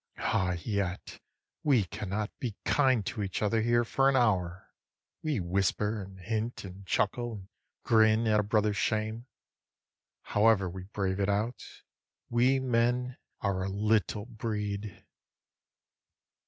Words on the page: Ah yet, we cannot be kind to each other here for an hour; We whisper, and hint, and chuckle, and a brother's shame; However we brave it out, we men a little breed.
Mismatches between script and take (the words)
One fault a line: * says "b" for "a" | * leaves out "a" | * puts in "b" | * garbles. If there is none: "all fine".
* puts in "grin at"
* puts in "are"